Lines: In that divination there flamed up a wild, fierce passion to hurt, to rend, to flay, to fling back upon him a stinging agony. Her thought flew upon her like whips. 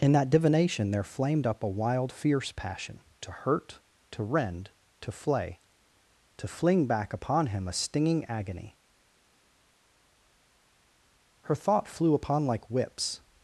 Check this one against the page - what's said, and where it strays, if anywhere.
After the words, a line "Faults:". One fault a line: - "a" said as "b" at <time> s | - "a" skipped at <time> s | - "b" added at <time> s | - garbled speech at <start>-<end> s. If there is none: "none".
In that divination there flamed up a wild, fierce passion to hurt, to rend, to flay, to fling back upon him a stinging agony. Her thought flew upon like whips.
Faults:
- "her" skipped at 12.5 s